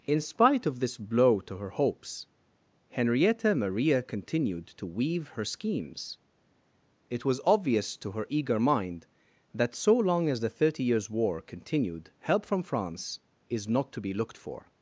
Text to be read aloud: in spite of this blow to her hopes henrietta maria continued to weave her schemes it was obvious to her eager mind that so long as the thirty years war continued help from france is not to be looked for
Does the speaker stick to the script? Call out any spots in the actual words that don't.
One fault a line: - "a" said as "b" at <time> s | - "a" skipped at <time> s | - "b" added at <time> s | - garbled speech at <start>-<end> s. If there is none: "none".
none